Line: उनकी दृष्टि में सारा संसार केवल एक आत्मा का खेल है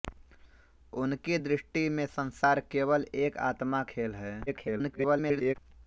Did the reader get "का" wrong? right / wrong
wrong